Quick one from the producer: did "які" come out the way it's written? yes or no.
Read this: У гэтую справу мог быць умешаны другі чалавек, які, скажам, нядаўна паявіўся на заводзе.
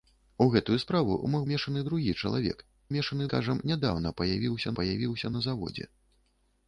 no